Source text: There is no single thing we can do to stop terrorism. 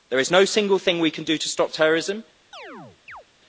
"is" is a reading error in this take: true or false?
false